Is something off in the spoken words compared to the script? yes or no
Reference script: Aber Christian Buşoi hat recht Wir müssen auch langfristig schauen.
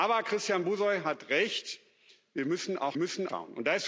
yes